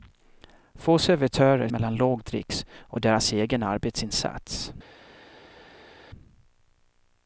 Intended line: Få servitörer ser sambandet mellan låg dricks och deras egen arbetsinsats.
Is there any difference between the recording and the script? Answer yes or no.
yes